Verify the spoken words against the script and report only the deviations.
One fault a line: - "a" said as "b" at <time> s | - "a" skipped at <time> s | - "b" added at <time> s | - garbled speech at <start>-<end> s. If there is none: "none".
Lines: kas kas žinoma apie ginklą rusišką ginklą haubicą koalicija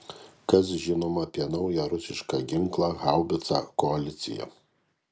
- "kas" skipped at 0.7 s
- "ginklą" said as "naują" at 1.5 s